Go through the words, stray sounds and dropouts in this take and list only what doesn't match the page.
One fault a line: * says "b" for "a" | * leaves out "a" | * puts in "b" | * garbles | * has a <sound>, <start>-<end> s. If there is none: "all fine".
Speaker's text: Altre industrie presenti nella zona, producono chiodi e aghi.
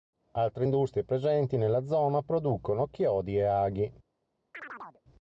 * has a chirp, 4.5-5.0 s